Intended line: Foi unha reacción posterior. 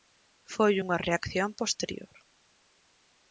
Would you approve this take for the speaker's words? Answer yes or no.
yes